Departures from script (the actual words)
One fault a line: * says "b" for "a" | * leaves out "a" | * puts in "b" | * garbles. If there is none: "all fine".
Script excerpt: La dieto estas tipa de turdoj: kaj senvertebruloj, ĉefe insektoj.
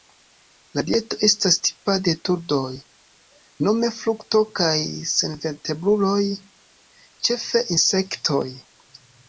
* puts in "nome frukto"